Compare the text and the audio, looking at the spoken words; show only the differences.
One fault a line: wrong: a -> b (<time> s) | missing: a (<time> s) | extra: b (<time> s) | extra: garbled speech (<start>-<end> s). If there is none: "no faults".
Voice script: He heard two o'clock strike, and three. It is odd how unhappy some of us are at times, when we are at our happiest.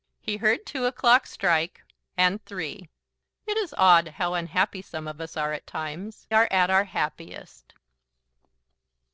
missing: when we (6.3 s)